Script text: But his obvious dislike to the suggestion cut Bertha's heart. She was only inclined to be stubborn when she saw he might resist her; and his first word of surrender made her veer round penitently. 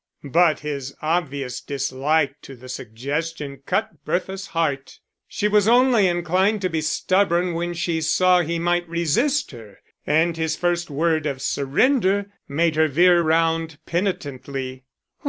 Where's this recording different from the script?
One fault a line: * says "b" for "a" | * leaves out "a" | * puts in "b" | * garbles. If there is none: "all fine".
all fine